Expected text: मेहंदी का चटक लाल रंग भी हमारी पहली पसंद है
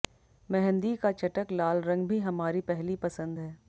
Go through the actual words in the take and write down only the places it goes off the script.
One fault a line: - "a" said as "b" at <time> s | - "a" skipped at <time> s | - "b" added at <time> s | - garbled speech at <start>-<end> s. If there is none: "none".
none